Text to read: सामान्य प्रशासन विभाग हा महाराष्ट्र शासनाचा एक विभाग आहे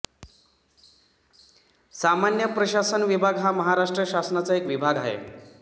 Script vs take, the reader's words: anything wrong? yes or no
no